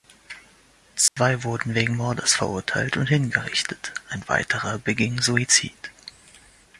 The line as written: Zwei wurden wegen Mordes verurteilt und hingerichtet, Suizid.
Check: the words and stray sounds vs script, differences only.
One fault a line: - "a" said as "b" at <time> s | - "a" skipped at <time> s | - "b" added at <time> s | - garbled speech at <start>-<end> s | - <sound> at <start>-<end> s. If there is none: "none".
- dropout at 1.1-1.2 s
- "ein weiterer beging" added at 4.1 s